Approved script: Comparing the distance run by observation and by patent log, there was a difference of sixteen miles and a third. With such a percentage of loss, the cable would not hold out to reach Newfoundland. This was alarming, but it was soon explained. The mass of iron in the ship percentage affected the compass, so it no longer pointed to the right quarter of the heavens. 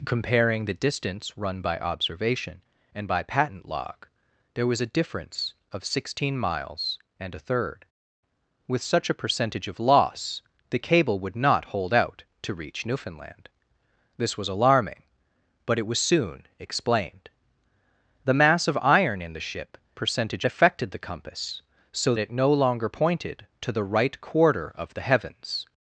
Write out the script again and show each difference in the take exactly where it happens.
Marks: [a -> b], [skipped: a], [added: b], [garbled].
Comparing the distance run by observation and by patent log, there was a difference of sixteen miles and a third. With such a percentage of loss, the cable would not hold out to reach Newfoundland. This was alarming, but it was soon explained. The mass of iron in the ship percentage affected the compass, so it no longer pointed to the right quarter of the heavens.